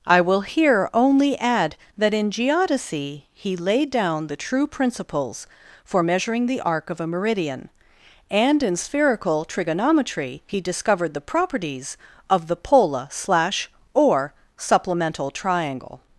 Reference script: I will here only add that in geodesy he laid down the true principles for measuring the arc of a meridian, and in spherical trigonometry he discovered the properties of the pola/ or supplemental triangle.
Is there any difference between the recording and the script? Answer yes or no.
yes